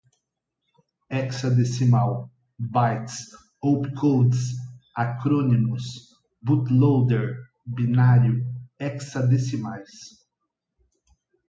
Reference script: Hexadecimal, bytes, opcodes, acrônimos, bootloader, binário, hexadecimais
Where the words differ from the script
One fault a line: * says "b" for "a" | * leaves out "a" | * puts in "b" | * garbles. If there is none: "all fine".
all fine